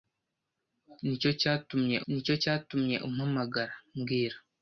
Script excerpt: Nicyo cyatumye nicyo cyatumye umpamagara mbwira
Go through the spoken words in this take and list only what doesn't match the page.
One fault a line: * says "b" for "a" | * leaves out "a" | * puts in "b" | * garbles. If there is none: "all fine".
all fine